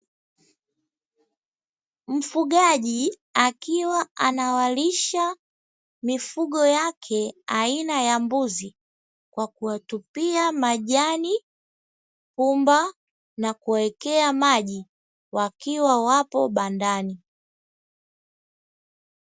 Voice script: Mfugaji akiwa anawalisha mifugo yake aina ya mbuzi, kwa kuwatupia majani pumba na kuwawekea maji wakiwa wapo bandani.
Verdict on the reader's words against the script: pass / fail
pass